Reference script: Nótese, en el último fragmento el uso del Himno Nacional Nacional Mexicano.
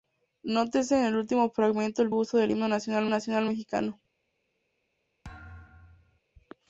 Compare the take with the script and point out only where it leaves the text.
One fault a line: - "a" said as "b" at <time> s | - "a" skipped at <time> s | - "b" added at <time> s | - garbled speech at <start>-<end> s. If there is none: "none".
none